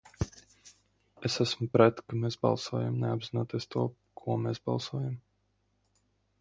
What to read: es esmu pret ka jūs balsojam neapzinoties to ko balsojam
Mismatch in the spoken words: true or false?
true